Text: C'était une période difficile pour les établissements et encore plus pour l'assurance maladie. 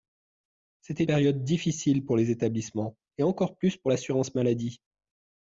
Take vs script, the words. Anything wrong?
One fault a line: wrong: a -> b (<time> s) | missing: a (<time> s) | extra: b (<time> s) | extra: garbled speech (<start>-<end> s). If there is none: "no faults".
missing: une (1.0 s)